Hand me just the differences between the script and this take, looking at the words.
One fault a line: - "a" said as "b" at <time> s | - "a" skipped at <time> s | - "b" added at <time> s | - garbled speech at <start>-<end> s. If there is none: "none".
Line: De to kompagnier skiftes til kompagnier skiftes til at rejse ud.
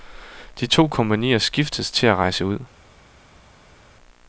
- "kompagnier skiftes til" skipped at 2.1 s